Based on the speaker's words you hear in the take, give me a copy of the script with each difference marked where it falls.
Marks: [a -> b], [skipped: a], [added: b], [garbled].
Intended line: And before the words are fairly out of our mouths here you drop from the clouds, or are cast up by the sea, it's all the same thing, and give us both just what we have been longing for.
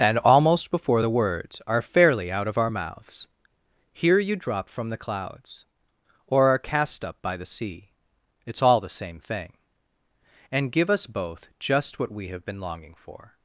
And [added: almost] before the words are fairly out of our mouths here you drop from the clouds, or are cast up by the sea, it's all the same thing, and give us both just what we have been longing for.